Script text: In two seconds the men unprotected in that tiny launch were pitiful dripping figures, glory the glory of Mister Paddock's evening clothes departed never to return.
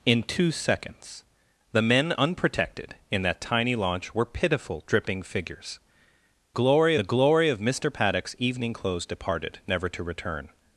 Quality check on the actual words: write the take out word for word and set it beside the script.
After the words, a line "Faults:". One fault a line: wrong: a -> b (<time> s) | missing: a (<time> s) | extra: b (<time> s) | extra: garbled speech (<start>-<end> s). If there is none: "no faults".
In two seconds the men unprotected in that tiny launch were pitiful dripping figures, glory the glory of Mister Paddock's evening clothes departed never to return.
Faults:
no faults